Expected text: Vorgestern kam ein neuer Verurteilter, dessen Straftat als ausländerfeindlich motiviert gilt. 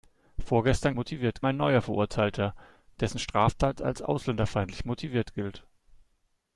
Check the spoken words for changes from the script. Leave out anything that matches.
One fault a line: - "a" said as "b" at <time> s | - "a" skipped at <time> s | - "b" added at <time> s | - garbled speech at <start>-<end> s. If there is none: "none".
- "kam" said as "motiviert" at 0.9 s